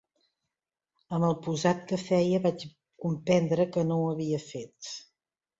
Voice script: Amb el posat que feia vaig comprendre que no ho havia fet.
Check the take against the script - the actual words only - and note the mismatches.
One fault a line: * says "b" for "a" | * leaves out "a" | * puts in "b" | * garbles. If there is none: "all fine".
all fine